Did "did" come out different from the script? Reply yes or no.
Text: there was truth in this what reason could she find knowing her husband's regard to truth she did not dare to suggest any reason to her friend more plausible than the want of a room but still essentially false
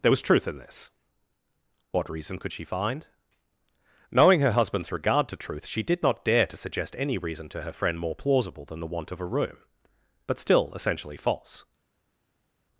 no